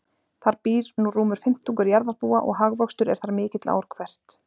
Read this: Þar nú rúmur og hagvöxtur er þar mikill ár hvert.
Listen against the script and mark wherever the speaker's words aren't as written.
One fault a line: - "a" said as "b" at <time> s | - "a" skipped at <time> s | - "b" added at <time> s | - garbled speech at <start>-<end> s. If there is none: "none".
- "býr" added at 0.7 s
- "fimmtungur jarðarbúa" added at 1.4 s